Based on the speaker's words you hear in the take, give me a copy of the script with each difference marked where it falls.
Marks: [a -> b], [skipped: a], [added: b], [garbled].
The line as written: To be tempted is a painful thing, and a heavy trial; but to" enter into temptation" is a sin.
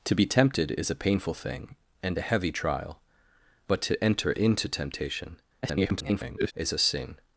To be tempted is a painful thing, and a heavy trial; but to" enter into temptation" [garbled] is a sin.